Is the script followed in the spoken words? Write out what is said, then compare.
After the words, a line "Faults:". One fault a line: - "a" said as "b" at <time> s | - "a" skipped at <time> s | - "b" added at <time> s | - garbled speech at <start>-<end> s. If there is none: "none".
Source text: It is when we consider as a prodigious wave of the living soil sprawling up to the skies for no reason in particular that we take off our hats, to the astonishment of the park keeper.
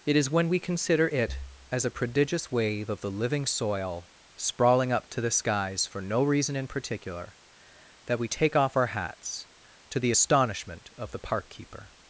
It is when we consider it as a prodigious wave of the living soil sprawling up to the skies for no reason in particular that we take off our hats, to the astonishment of the park keeper.
Faults:
- "it" added at 1.1 s